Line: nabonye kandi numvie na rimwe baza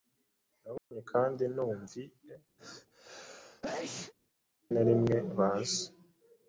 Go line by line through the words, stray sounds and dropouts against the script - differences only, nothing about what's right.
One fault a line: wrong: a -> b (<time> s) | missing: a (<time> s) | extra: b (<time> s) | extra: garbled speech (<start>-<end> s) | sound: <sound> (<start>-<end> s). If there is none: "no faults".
sound: dropout (0.8-0.9 s)
sound: sneeze (2.6-4.1 s)